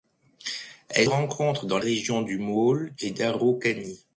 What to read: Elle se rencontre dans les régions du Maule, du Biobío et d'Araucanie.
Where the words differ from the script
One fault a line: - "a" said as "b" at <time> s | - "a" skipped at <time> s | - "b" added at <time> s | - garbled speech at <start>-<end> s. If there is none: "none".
- "se" skipped at 1.1 s
- "les" skipped at 1.8 s
- "du Biobío" skipped at 2.9 s